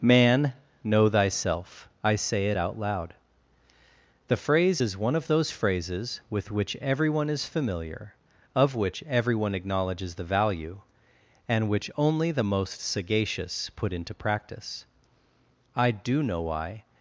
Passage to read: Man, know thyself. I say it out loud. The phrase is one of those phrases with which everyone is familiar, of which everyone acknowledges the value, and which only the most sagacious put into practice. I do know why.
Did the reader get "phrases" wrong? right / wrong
right